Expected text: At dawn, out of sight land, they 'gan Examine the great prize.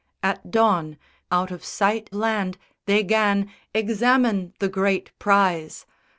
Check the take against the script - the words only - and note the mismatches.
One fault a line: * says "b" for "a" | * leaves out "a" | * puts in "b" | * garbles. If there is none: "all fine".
all fine